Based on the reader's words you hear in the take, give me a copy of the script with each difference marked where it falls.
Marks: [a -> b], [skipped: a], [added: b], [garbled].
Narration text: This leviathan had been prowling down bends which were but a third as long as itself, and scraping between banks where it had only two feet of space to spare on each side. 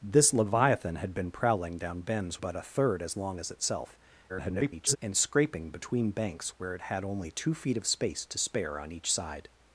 This leviathan had been prowling down bends [skipped: which were] but a third as long as itself, [garbled] and scraping between banks where it had only two feet of space to spare on each side.